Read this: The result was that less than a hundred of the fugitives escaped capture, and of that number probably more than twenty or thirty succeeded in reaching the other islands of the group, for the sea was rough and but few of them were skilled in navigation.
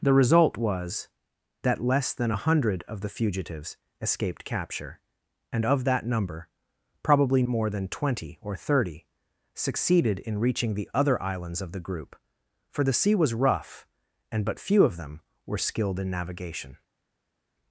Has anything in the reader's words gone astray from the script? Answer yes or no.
no